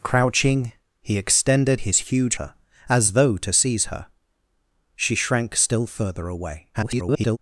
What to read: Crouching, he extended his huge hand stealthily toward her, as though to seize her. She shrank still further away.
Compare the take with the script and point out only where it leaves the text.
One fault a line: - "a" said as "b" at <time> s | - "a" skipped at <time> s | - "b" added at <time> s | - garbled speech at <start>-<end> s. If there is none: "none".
- "hand stealthily toward" skipped at 2.4 s
- garbled speech at 6.7-7.4 s